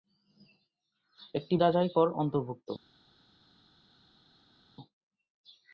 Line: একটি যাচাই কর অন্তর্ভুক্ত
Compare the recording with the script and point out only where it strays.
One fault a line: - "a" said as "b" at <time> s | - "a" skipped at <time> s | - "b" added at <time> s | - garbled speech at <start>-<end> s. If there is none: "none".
none